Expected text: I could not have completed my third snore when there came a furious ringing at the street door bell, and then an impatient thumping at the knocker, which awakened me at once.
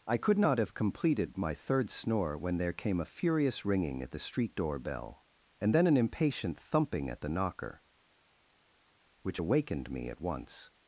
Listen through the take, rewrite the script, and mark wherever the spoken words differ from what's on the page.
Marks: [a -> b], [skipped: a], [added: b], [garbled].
I could not have completed my third snore when there came a furious ringing at the street door bell, and then an impatient thumping at the knocker, which awakened me at once.